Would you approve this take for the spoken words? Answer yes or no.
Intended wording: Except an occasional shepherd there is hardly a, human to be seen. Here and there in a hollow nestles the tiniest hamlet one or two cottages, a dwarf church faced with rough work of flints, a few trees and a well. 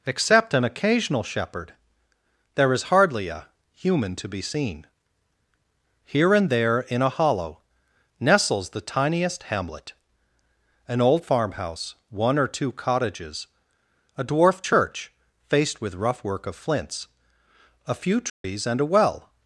no